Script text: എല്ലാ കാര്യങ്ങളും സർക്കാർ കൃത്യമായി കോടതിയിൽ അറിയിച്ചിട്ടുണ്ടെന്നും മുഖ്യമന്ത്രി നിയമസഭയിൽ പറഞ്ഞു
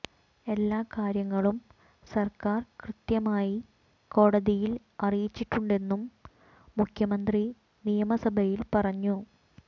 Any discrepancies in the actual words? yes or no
no